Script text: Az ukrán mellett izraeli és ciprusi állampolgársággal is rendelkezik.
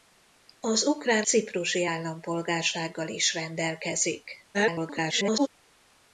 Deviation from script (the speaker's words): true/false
true